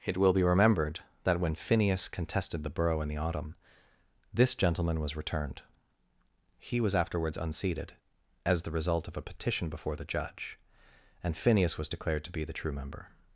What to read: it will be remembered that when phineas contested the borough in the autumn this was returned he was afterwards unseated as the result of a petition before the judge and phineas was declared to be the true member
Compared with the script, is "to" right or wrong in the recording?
right